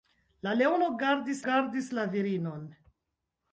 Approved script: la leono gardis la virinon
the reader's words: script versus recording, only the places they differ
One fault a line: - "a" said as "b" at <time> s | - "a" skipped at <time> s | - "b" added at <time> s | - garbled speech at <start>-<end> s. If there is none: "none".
- "gardis" added at 1.5 s